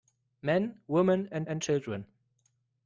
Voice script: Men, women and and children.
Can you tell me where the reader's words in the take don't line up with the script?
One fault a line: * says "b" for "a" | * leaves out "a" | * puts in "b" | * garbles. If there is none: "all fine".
all fine